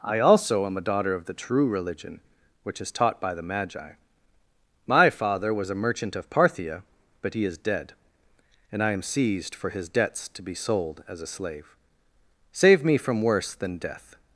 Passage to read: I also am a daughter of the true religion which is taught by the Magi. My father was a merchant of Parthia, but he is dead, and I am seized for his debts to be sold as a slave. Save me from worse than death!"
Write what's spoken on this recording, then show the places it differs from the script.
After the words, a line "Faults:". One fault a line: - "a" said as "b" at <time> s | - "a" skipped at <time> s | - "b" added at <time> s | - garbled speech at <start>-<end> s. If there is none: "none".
I also am a daughter of the true religion which is taught by the Magi. My father was a merchant of Parthia, but he is dead, and I am seized for his debts to be sold as a slave. Save me from worse than death!"
Faults:
none